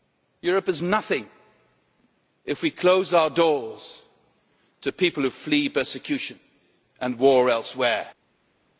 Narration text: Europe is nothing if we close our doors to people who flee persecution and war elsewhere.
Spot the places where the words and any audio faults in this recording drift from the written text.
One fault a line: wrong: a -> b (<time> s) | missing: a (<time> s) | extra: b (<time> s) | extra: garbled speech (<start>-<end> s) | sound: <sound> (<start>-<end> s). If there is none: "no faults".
no faults